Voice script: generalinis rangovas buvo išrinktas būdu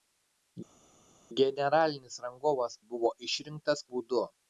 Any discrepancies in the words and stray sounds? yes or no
no